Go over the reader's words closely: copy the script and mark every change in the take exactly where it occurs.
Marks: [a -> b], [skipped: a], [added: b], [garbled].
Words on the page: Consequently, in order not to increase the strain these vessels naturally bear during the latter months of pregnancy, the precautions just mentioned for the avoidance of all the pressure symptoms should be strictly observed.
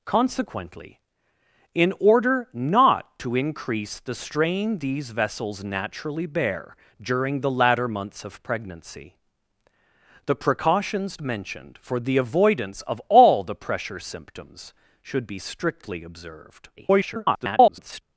Consequently, in order not to increase the strain these vessels naturally bear during the latter months of pregnancy, the precautions [skipped: just] mentioned for the avoidance of all the pressure symptoms should be strictly observed. [garbled]